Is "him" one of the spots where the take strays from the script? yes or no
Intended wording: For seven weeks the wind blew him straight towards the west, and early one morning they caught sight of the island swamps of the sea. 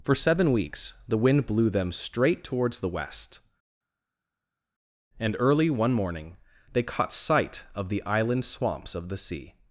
yes